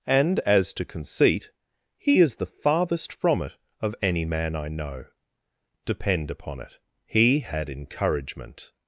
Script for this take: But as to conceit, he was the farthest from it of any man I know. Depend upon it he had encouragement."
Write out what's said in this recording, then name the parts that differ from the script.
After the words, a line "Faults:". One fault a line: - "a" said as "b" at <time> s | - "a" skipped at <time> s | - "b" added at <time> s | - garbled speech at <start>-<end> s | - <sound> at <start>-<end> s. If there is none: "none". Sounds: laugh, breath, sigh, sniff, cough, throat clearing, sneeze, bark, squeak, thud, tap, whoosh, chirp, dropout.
And as to conceit, he is the farthest from it of any man I know. Depend upon it he had encouragement."
Faults:
- "But" said as "And" at 0.1 s
- "was" said as "is" at 2.2 s